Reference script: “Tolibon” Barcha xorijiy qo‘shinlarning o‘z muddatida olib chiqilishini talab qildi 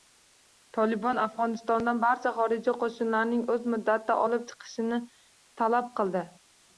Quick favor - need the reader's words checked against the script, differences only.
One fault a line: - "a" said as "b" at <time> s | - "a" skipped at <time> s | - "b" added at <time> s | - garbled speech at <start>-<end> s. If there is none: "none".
- "Afg‘onistondan" added at 1.2 s